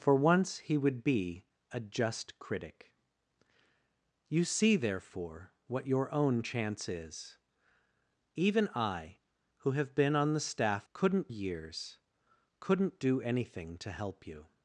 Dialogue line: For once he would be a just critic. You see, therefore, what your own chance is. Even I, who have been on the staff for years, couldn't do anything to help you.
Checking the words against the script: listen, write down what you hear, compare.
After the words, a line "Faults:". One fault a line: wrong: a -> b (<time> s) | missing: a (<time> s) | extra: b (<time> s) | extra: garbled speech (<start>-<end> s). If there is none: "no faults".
For once he would be a just critic. You see, therefore, what your own chance is. Even I, who have been on the staff couldn't years, couldn't do anything to help you.
Faults:
wrong: for -> couldn't (10.9 s)